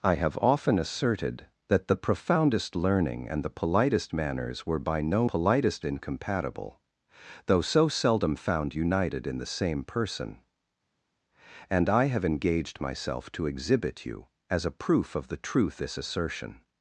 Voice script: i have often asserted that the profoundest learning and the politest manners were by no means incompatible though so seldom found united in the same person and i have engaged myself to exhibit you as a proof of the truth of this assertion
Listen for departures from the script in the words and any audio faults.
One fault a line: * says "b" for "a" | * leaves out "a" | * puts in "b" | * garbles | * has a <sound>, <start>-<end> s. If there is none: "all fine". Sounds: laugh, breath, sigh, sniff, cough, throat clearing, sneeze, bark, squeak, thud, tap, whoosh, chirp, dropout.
* says "politest" for "means"
* leaves out "of"